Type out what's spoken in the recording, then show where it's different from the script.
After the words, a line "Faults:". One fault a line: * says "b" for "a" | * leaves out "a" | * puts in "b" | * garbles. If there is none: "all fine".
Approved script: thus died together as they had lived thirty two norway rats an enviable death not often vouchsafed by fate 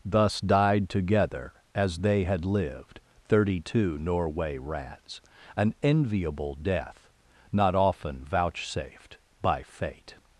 thus died together as they had lived thirty two norway rats an enviable death not often vouchsafed by fate
Faults:
all fine